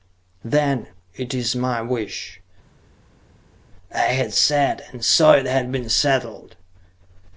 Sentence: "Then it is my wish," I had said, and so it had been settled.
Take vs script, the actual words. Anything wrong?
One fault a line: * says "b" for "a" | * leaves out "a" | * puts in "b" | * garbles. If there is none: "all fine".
all fine